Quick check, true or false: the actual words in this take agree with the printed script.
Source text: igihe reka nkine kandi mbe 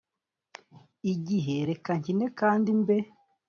true